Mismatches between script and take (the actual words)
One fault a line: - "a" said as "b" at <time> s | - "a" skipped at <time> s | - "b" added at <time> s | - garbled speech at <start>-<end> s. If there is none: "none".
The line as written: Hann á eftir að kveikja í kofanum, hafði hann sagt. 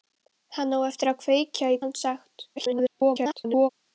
- "kofanum hafði" skipped at 1.8 s
- garbled speech at 2.6-3.7 s